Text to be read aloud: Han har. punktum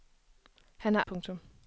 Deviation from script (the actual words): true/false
false